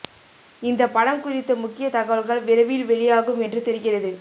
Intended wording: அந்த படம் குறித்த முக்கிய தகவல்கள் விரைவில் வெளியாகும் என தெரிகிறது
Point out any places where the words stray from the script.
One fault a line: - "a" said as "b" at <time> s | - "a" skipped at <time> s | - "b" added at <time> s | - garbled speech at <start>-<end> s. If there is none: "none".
- "அந்த" said as "இந்த" at 0.6 s
- "என" said as "என்று" at 3.4 s